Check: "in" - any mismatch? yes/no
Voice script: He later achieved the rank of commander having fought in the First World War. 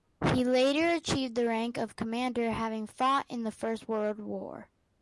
no